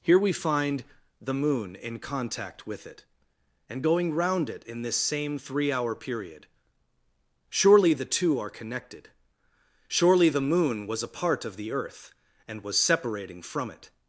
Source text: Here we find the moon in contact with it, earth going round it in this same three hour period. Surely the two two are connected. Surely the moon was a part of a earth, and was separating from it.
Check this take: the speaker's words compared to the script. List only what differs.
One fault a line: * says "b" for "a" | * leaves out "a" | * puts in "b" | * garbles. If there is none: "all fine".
* says "and" for "earth"
* leaves out "two"
* says "the" for "a"